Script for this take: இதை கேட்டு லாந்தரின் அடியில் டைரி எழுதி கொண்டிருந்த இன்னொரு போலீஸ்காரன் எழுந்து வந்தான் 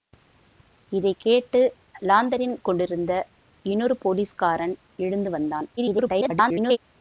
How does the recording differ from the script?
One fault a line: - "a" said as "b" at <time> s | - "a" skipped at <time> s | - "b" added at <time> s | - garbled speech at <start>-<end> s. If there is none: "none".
- "அடியில் டைரி எழுதி" skipped at 2.5 s
- garbled speech at 5.8-6.8 s